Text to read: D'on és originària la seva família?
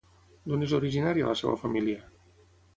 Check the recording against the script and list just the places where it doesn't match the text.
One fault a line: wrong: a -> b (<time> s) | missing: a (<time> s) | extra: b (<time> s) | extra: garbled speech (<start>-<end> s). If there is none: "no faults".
no faults